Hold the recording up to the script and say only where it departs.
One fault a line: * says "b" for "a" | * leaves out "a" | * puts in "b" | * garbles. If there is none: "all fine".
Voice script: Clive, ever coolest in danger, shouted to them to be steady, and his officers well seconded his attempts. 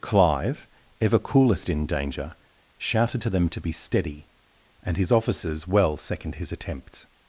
* says "second" for "seconded"